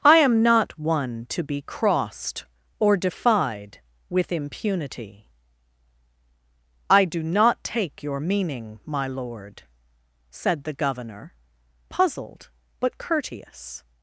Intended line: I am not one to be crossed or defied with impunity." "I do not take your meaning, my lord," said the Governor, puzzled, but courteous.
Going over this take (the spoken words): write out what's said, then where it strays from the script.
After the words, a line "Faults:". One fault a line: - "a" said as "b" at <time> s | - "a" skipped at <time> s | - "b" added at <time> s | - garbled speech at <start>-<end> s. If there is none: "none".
I am not one to be crossed or defied with impunity." "I do not take your meaning, my lord," said the Governor, puzzled, but courteous.
Faults:
none